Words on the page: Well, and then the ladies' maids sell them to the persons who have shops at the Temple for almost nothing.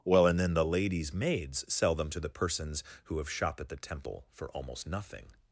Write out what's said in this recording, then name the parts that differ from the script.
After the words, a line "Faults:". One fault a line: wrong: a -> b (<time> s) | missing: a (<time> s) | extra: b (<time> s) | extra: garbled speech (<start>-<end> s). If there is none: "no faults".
Well, and then the ladies' maids sell them to the persons who have shop at the Temple for almost nothing.
Faults:
wrong: shops -> shop (3.3 s)